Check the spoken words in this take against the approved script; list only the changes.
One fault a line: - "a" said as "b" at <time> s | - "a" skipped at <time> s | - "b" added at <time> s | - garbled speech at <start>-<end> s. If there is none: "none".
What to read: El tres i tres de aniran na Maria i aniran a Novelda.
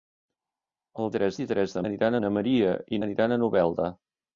none